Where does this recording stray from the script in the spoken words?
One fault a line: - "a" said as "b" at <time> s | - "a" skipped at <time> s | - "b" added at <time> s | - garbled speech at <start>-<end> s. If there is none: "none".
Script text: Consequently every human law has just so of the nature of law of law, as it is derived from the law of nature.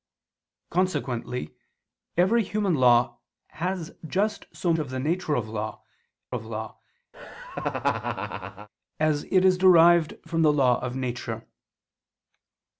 none